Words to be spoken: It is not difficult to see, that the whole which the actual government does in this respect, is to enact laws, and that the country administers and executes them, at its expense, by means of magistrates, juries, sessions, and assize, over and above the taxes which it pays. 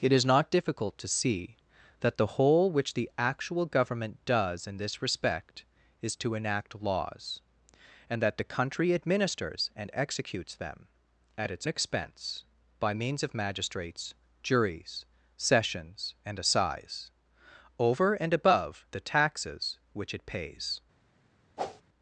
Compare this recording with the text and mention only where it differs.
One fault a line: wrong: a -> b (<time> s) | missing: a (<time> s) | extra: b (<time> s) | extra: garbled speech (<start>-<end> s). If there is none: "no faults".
no faults